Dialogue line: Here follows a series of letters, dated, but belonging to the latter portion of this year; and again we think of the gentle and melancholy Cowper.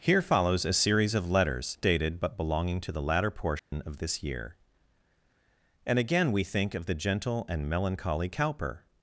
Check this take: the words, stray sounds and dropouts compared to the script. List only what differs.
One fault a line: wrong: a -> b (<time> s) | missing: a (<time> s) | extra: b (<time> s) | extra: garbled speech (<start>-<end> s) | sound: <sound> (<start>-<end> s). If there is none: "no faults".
sound: dropout (3.6-3.7 s)